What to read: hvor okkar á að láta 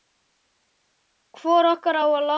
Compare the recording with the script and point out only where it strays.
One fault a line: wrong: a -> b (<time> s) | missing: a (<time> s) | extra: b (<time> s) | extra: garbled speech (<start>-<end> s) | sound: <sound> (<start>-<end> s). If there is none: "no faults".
no faults